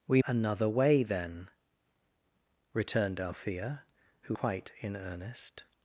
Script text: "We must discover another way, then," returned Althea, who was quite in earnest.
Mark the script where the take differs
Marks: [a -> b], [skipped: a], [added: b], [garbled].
"We [skipped: must discover] another way, then," returned Althea, who [skipped: was] quite in earnest.